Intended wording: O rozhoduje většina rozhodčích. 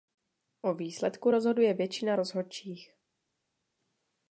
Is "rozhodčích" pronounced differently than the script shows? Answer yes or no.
no